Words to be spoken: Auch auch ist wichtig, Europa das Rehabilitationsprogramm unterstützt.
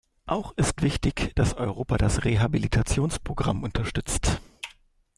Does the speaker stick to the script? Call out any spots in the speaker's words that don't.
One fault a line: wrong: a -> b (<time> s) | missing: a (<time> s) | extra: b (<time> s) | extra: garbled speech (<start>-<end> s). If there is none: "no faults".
missing: auch (0.5 s)
extra: dass (1.4 s)